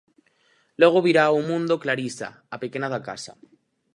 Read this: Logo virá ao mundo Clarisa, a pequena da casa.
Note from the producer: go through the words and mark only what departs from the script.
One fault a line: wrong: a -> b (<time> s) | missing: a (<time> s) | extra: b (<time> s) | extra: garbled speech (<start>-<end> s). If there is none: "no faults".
no faults